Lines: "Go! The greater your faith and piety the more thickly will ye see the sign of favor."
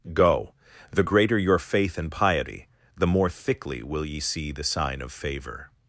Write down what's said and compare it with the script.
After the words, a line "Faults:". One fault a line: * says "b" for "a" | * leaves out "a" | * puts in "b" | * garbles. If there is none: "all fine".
"Go! The greater your faith and piety the more thickly will ye see the sign of favor."
Faults:
all fine